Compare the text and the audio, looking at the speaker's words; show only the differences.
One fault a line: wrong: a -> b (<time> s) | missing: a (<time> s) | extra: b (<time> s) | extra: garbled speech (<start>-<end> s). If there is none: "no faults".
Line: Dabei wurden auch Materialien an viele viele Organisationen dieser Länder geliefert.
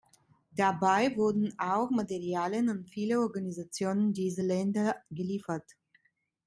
missing: viele (3.2 s)